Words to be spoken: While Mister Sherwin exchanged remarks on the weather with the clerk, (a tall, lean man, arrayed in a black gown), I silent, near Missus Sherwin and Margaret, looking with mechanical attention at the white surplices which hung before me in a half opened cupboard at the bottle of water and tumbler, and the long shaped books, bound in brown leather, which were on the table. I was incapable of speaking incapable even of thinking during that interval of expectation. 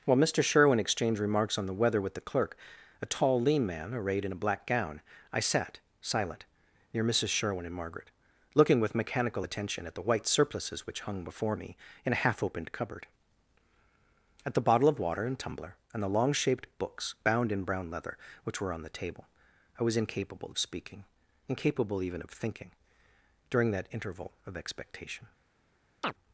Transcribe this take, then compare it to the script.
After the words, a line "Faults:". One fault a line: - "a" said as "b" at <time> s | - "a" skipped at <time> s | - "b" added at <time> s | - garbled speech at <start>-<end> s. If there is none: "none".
While Mister Sherwin exchanged remarks on the weather with the clerk, (a tall, lean man, arrayed in a black gown), I sat silent, near Missus Sherwin and Margaret, looking with mechanical attention at the white surplices which hung before me in a half opened cupboard at the bottle of water and tumbler, and the long shaped books, bound in brown leather, which were on the table. I was incapable of speaking incapable even of thinking during that interval of expectation.
Faults:
- "sat" added at 5.4 s